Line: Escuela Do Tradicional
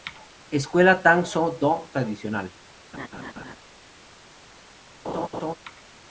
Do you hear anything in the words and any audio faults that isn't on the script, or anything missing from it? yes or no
yes